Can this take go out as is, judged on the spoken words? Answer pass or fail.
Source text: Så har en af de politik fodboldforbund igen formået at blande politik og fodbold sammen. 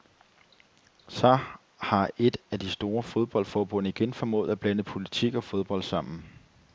fail